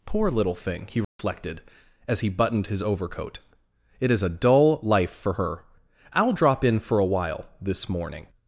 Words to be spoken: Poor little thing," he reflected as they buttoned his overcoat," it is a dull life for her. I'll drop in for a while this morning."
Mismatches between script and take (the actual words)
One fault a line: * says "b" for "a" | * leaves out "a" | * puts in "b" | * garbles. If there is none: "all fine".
* says "he" for "they"